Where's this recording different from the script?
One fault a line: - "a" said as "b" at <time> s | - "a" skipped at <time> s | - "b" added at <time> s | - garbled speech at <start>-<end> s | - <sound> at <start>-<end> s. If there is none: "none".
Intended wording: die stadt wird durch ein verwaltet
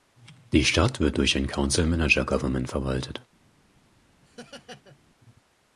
- "council manager government" added at 1.5 s
- laugh at 4.2-5.0 s